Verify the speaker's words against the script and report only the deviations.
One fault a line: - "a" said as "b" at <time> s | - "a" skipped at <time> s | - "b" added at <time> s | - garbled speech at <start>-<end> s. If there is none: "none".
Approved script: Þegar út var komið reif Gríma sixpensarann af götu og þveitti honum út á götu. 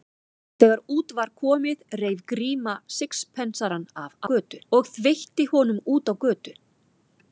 none